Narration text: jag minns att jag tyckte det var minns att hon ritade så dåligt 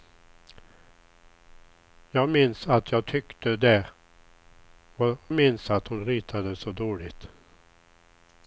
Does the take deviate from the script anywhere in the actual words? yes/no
no